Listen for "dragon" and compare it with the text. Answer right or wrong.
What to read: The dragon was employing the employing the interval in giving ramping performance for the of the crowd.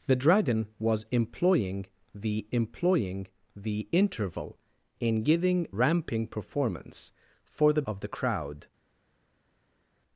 right